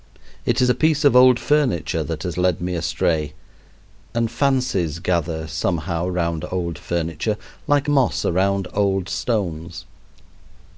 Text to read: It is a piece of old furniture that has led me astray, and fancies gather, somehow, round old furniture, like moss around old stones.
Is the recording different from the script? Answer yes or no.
no